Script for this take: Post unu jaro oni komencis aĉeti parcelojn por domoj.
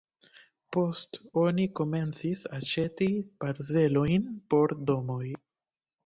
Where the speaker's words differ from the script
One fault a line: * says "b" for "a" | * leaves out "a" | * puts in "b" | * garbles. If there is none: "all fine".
* leaves out "unu jaro"